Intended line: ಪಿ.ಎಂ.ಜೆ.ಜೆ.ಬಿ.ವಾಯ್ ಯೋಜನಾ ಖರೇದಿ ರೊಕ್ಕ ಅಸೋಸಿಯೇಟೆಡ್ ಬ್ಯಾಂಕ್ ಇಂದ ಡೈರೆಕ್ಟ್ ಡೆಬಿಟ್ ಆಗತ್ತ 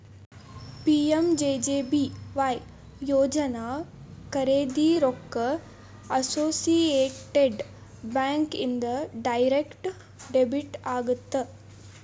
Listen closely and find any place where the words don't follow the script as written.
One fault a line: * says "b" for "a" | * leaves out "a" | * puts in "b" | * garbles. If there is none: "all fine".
all fine